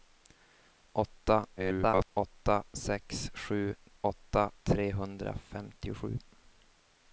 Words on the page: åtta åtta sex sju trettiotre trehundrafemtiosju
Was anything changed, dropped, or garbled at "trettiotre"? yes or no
yes